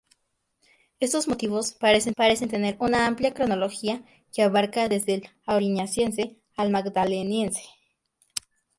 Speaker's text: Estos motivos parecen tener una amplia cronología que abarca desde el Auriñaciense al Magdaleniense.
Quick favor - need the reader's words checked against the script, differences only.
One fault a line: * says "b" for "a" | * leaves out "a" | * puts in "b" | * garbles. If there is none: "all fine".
* puts in "parecen"